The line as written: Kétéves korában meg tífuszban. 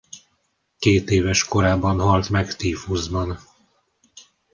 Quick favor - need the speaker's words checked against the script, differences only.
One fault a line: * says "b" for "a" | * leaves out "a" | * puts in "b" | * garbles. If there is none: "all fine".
* puts in "halt"